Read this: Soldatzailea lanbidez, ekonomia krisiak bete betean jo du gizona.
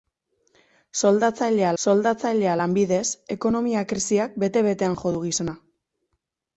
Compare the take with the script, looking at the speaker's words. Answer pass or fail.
fail